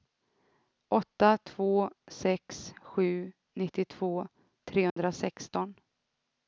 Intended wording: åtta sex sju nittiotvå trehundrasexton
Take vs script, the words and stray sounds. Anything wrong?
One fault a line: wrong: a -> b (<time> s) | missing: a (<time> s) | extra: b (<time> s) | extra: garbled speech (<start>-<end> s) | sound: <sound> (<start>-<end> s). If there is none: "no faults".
extra: två (1.4 s)
sound: dropout (4.9-5.0 s)